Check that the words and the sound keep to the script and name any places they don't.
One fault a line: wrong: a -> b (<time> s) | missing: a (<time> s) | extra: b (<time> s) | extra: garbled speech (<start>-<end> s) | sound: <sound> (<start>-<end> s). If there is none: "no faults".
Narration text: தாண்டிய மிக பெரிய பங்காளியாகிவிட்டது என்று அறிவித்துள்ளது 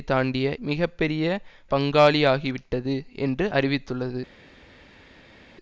no faults